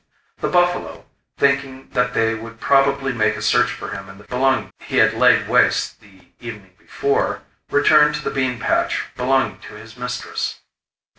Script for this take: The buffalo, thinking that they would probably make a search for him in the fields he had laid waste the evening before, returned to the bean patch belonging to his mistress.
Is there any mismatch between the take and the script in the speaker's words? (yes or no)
yes